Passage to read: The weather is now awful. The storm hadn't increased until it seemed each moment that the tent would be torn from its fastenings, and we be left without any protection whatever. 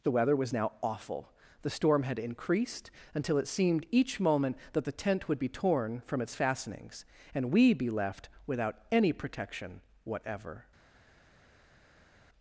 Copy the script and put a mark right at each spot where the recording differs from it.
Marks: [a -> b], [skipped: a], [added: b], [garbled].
The weather [is -> was] now awful. The storm [hadn't -> had] increased until it seemed each moment that the tent would be torn from its fastenings, and we be left without any protection whatever.